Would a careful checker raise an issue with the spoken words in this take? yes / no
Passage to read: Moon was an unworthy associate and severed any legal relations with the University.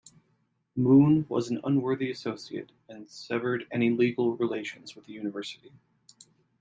no